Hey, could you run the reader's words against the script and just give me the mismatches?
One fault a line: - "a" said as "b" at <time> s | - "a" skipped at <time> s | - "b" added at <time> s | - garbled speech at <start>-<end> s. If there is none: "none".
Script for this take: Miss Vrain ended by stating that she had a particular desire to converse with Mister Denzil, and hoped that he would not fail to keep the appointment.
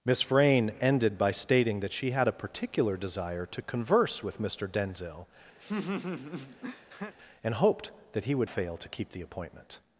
- "not" skipped at 8.5 s